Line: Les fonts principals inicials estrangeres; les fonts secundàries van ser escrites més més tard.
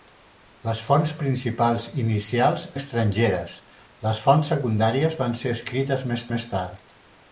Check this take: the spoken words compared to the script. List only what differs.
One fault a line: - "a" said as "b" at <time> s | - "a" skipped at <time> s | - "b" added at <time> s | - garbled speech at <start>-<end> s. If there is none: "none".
none